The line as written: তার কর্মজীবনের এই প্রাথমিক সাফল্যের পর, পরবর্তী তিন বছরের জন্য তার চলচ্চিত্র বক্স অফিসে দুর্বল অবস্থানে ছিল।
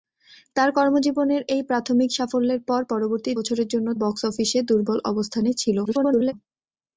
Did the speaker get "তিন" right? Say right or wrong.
wrong